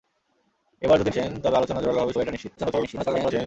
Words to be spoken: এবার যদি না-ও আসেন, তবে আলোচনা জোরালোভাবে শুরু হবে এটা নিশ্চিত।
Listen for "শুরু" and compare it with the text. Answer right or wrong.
wrong